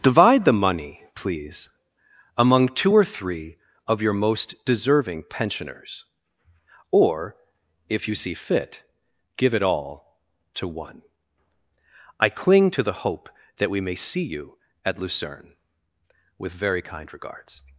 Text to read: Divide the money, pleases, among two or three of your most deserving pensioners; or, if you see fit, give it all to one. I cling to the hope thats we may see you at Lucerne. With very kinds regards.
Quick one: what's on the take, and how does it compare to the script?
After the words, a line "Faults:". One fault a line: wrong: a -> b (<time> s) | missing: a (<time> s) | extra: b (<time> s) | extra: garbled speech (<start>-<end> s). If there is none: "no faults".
Divide the money, please, among two or three of your most deserving pensioners; or, if you see fit, give it all to one. I cling to the hope that we may see you at Lucerne. With very kind regards.
Faults:
wrong: pleases -> please (1.1 s)
wrong: thats -> that (13.6 s)
wrong: kinds -> kind (16.8 s)